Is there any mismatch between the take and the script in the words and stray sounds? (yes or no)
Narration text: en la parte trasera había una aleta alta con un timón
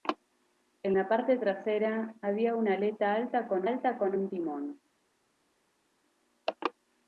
yes